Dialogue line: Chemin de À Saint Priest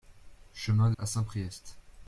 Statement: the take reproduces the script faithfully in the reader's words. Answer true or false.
true